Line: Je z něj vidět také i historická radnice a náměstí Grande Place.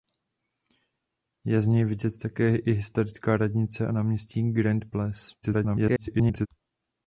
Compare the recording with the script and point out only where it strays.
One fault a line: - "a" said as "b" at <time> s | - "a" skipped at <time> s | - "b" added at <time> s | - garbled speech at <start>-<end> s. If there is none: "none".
- garbled speech at 5.4-6.5 s